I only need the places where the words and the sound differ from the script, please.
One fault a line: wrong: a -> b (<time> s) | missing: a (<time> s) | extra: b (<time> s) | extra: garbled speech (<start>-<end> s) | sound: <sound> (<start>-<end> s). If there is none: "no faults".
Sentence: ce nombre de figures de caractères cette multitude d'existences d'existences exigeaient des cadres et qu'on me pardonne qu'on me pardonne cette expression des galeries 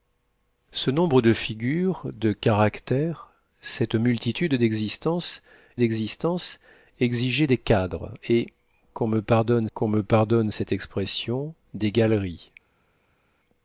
no faults